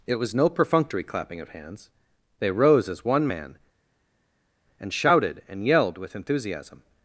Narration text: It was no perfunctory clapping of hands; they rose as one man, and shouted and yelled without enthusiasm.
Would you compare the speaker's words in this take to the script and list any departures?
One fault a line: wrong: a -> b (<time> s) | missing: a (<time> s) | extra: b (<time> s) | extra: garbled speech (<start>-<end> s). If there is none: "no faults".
wrong: without -> with (6.0 s)